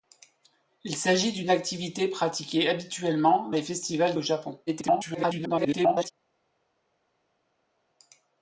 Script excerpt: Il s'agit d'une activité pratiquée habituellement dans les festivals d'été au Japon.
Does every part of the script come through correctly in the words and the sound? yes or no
no